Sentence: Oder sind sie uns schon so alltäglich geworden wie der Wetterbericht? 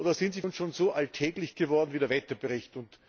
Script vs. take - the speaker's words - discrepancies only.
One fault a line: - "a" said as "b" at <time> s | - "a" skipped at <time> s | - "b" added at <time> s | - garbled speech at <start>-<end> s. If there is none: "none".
none